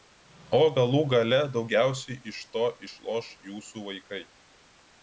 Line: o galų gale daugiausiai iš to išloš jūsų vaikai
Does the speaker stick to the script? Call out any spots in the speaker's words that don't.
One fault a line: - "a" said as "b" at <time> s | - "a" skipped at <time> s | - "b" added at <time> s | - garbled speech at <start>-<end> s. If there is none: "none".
none